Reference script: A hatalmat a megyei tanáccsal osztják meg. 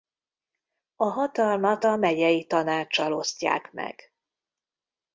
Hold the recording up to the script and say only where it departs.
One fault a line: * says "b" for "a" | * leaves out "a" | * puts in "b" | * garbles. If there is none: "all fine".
all fine